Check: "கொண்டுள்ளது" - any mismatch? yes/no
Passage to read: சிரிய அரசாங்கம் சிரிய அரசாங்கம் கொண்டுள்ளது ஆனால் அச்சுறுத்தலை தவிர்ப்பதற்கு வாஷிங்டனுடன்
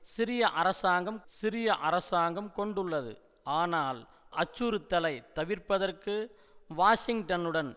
no